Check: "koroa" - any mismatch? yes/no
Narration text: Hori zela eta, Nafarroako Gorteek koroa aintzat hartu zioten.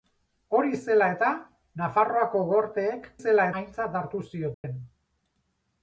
yes